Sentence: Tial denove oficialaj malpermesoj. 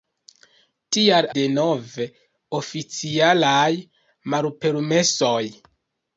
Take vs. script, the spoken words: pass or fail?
pass